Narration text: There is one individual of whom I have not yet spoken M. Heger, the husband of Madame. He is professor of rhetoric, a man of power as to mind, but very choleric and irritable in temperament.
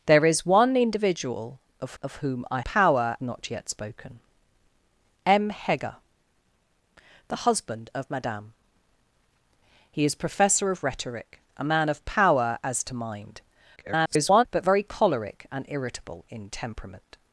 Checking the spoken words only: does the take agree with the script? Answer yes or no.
no